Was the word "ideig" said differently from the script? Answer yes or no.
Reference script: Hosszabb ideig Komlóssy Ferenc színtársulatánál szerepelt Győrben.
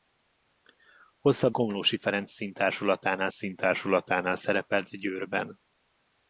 yes